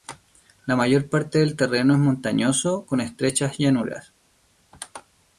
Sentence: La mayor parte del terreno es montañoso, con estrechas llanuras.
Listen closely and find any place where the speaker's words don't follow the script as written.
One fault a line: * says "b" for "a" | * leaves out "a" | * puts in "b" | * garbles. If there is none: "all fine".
all fine